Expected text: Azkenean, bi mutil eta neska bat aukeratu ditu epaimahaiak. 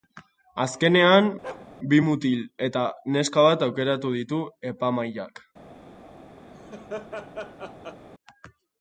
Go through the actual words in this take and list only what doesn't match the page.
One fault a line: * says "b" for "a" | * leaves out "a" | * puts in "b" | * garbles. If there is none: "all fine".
all fine